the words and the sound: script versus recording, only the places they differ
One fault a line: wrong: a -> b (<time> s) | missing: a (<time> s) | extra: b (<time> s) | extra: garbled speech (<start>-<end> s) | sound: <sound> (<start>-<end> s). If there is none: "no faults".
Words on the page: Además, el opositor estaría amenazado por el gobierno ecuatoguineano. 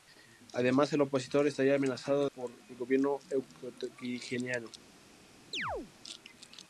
sound: chirp (5.5-5.9 s)